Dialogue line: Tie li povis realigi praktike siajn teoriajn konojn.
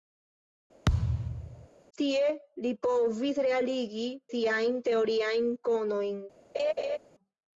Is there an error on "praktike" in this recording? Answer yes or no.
yes